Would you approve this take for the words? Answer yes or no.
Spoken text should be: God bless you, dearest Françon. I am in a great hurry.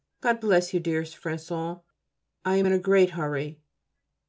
yes